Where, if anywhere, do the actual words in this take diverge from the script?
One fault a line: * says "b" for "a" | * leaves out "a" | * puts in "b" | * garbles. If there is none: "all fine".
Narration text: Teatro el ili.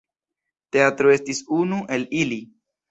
* puts in "estis unu"